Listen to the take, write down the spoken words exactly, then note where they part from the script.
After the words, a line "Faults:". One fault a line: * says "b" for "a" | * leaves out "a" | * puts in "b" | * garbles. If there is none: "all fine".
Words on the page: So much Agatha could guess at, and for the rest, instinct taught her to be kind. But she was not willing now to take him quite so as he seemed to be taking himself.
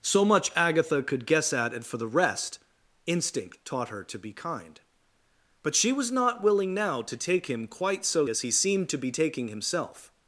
So much Agatha could guess at, and for the rest, instinct taught her to be kind. But she was not willing now to take him quite so as he seemed to be taking himself.
Faults:
all fine